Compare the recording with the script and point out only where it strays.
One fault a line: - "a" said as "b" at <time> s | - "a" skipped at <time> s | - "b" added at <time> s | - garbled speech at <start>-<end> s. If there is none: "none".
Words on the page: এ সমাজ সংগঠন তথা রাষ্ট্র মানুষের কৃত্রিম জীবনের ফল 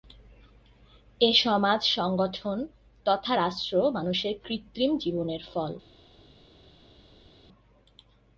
none